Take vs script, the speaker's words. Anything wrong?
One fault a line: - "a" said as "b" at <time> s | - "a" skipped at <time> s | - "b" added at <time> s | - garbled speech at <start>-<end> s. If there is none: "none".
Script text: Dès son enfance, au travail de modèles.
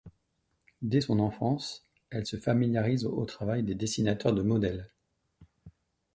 - "elle se familiarise" added at 2.1 s
- "des dessinateurs" added at 3.6 s